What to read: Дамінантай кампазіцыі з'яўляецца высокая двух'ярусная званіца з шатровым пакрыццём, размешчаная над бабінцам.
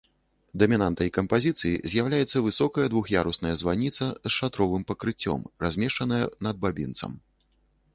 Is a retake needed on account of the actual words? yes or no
no